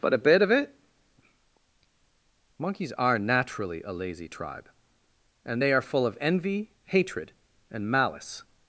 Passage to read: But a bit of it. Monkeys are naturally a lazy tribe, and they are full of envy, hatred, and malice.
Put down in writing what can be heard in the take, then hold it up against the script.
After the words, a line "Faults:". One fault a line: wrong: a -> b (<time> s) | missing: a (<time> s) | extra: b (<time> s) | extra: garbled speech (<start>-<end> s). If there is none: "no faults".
But a bit of it. Monkeys are naturally a lazy tribe, and they are full of envy, hatred, and malice.
Faults:
no faults